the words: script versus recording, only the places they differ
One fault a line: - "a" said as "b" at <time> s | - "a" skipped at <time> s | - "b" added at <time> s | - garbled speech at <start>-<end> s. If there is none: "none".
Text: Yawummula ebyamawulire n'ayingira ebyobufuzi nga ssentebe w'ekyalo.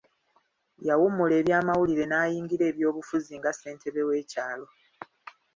none